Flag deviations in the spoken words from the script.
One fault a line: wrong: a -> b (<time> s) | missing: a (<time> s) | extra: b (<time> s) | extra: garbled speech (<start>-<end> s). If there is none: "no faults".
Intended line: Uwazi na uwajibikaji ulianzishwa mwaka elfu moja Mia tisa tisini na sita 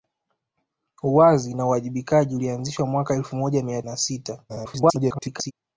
missing: tisa tisini (3.8 s)
extra: garbled speech (4.5-5.5 s)